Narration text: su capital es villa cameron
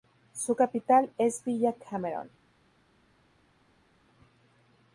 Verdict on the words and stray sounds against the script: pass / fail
pass